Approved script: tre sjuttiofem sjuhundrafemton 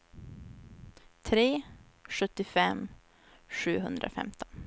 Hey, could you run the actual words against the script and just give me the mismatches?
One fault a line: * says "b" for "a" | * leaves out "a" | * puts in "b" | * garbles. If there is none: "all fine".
all fine